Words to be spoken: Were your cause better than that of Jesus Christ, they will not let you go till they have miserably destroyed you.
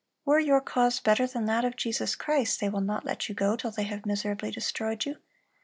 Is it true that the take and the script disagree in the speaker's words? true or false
false